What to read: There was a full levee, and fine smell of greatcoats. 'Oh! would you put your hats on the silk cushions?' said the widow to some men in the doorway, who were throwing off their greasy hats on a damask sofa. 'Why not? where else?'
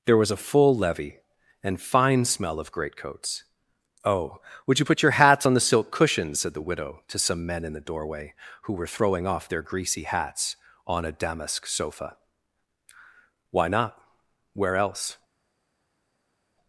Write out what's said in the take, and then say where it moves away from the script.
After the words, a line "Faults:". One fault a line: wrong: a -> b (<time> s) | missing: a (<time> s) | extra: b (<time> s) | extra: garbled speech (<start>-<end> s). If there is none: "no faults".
There was a full levee, and fine smell of greatcoats. 'Oh! would you put your hats on the silk cushions?' said the widow to some men in the doorway, who were throwing off their greasy hats on a damask sofa. 'Why not? where else?'
Faults:
no faults